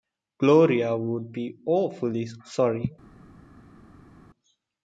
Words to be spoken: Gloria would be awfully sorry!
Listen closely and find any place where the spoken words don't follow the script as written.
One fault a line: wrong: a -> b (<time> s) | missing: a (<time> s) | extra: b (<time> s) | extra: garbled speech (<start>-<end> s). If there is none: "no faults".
no faults